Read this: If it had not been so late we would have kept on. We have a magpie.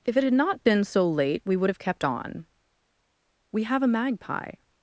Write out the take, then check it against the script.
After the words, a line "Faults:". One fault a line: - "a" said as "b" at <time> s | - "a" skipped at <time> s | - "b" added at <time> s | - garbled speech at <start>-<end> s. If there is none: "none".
If it had not been so late we would have kept on. We have a magpie.
Faults:
none